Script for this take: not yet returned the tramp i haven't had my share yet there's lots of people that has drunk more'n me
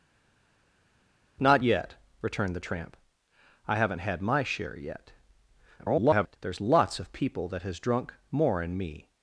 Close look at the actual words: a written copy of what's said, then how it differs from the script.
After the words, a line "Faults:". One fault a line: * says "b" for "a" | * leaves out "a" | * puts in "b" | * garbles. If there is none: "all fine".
not yet returned the tramp i haven't had my share yet [garbled] there's lots of people that has drunk more'n me
Faults:
* garbles